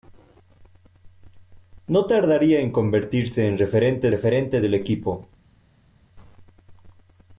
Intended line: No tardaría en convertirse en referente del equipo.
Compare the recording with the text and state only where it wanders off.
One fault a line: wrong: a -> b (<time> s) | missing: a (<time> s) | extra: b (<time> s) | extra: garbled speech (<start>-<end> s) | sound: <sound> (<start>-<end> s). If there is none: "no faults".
extra: referente (4.1 s)